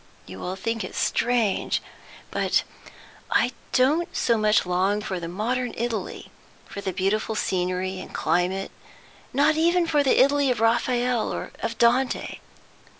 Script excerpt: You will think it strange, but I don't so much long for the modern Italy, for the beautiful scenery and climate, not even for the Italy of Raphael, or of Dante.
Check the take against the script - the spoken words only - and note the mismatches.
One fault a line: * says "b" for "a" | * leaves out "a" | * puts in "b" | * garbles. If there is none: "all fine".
all fine